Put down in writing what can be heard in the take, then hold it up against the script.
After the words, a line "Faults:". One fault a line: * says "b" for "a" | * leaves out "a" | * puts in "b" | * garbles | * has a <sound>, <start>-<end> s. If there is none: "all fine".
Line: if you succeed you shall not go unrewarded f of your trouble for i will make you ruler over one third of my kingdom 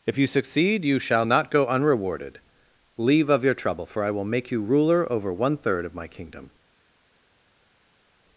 if you succeed you shall not go unrewarded leave of your trouble for i will make you ruler over one third of my kingdom
Faults:
* says "leave" for "f"